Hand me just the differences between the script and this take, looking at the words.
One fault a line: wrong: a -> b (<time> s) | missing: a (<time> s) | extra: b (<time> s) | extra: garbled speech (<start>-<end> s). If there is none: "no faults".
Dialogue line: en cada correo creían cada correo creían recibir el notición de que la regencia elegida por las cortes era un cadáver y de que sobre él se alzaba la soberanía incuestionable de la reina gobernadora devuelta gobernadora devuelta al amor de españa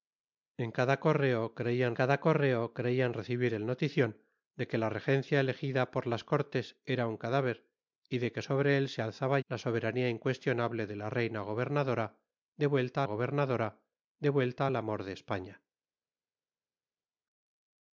no faults